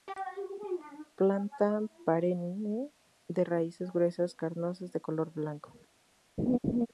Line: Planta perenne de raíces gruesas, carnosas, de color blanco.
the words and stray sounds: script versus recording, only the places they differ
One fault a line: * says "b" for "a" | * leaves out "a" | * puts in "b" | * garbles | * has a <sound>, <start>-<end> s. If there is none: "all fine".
* has a laugh, 6.4-6.9 s